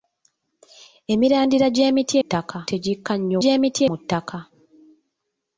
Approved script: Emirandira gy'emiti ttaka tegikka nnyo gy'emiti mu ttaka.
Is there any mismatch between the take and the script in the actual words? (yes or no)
no